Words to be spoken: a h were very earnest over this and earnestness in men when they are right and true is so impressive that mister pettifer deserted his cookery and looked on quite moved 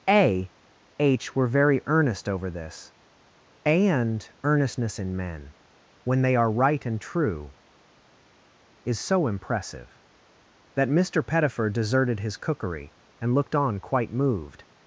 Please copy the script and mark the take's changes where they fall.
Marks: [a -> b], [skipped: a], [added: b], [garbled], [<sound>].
a h were very earnest over this and earnestness in men when they are right and true is so impressive that mister pettifer deserted his cookery and looked on quite moved